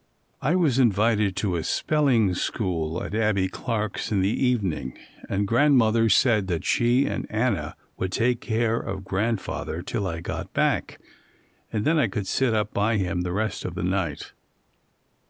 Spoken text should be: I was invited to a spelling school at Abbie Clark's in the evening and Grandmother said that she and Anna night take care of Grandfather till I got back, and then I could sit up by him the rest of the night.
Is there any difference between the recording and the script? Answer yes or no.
yes